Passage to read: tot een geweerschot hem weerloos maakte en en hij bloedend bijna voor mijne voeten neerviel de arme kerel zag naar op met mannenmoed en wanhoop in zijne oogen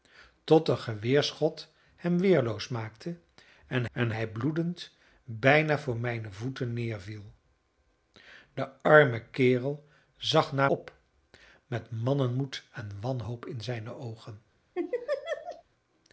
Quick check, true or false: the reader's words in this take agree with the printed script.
true